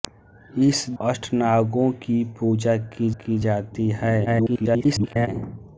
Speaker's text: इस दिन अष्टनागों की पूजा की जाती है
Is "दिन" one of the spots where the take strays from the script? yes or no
yes